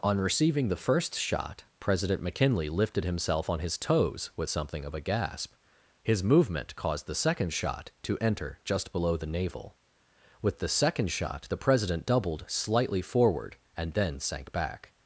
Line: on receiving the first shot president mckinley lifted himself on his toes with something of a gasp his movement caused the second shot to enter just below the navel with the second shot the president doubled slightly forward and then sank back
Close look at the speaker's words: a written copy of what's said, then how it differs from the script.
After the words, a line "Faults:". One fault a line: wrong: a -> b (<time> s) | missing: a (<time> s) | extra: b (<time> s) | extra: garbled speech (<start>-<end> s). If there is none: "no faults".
on receiving the first shot president mckinley lifted himself on his toes with something of a gasp his movement caused the second shot to enter just below the navel with the second shot the president doubled slightly forward and then sank back
Faults:
no faults